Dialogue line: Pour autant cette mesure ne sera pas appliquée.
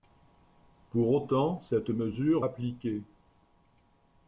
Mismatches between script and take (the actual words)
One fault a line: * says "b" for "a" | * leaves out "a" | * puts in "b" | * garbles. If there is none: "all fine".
* leaves out "ne sera pas"